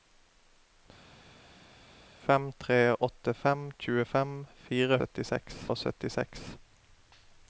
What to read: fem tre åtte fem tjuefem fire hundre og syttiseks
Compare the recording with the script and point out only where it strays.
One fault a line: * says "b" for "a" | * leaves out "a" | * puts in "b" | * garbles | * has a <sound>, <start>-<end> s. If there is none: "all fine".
* says "syttiseks" for "hundre"